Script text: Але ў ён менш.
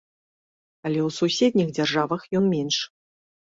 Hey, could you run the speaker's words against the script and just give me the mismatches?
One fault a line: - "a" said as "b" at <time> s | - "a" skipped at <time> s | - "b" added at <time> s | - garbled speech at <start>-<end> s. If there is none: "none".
- "суседніх дзяржавах" added at 1.2 s